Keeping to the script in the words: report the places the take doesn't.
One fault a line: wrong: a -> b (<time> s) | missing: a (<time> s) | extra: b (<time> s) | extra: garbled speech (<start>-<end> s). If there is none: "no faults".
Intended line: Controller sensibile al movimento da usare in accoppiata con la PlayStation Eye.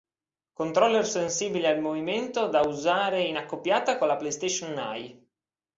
no faults